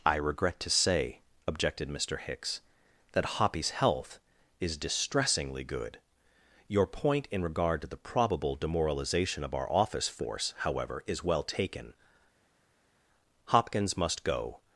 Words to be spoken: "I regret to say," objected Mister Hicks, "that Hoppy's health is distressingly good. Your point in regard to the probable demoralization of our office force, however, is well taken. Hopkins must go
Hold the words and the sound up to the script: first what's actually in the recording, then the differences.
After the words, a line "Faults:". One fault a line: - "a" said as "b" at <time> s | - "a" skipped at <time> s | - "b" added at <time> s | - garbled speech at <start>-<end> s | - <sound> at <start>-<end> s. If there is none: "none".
"I regret to say," objected Mister Hicks, "that Hoppy's health is distressingly good. Your point in regard to the probable demoralization of our office force, however, is well taken. Hopkins must go
Faults:
none